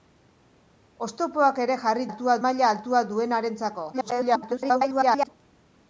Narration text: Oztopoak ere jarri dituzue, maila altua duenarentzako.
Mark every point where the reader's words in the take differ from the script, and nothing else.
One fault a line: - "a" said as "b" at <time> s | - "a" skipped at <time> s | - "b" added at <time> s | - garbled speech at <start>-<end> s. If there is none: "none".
- "dituzue" said as "altua" at 2.1 s
- garbled speech at 3.9-5.3 s